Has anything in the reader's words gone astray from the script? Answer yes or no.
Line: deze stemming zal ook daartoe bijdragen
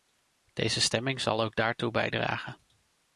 no